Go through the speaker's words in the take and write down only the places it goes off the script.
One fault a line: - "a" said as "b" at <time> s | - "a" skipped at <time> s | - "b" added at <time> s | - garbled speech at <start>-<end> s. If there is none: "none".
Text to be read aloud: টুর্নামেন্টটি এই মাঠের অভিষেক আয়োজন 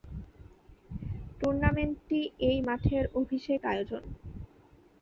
none